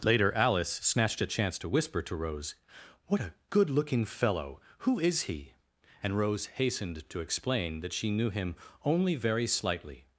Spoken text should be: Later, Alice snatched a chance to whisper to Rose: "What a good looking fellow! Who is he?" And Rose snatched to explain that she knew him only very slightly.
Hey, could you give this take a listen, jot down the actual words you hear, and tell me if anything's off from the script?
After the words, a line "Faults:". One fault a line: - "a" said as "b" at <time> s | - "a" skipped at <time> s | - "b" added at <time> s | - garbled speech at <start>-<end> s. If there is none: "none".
Later, Alice snatched a chance to whisper to Rose: "What a good looking fellow! Who is he?" And Rose hastened to explain that she knew him only very slightly.
Faults:
- "snatched" said as "hastened" at 6.5 s